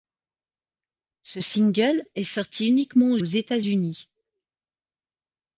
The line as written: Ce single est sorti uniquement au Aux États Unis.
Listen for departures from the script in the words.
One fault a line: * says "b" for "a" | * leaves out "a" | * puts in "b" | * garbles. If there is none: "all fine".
all fine